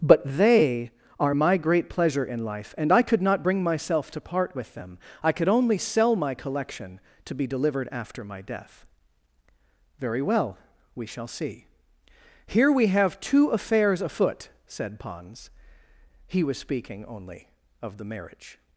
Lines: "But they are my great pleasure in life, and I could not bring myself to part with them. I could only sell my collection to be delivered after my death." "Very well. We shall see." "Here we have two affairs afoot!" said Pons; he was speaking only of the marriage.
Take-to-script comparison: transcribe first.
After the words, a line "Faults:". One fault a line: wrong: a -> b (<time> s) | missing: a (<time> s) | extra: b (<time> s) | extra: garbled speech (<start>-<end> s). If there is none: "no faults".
"But they are my great pleasure in life, and I could not bring myself to part with them. I could only sell my collection to be delivered after my death." "Very well. We shall see." "Here we have two affairs afoot!" said Pons; he was speaking only of the marriage.
Faults:
no faults